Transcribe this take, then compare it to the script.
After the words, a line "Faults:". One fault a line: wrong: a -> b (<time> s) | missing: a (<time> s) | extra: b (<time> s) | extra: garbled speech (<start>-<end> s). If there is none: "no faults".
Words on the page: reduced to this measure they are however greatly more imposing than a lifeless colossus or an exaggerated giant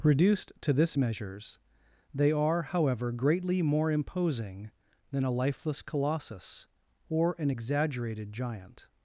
reduced to this measures they are however greatly more imposing than a lifeless colossus or an exaggerated giant
Faults:
wrong: measure -> measures (0.9 s)